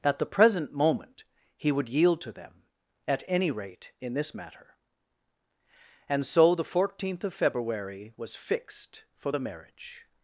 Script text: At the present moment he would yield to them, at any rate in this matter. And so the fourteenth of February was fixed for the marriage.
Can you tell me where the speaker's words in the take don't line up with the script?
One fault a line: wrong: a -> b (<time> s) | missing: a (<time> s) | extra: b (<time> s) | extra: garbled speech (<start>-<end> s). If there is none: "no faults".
no faults